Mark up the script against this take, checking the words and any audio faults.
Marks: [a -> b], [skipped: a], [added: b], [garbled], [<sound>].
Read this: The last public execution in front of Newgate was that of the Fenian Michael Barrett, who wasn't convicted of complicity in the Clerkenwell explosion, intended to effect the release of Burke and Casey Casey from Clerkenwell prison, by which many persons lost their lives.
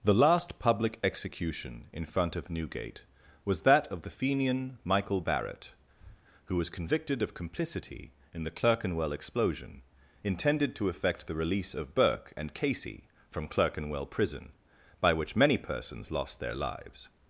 The last public execution in front of Newgate was that of the Fenian Michael Barrett, [breath] who [wasn't -> was] convicted of complicity in the Clerkenwell explosion, intended to effect the release of Burke and Casey [skipped: Casey] from Clerkenwell prison, by which many persons lost their lives.